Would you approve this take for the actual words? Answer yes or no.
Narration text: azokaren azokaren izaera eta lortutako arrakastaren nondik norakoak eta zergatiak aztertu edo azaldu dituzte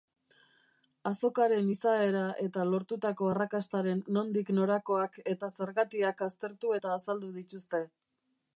no